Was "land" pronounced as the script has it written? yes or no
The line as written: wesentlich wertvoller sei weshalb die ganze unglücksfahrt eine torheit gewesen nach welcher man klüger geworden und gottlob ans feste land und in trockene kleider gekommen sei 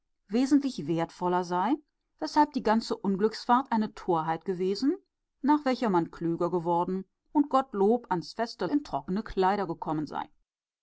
no